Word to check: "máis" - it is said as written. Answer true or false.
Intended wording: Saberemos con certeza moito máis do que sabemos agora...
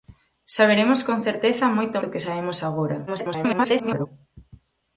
false